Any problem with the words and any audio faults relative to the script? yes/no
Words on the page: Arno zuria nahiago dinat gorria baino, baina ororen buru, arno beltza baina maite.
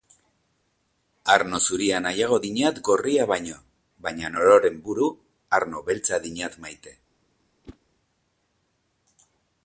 yes